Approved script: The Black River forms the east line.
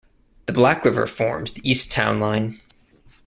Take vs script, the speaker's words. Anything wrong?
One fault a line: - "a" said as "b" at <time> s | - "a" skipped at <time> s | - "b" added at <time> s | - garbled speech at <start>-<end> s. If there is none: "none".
- "town" added at 1.9 s